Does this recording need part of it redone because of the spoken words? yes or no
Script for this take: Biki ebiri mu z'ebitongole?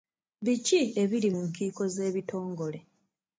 yes